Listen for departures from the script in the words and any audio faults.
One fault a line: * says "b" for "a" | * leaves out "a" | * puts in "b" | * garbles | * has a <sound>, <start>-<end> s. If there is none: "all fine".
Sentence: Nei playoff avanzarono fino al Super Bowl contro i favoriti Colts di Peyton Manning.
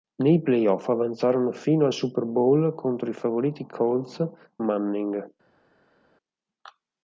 * leaves out "di Peyton"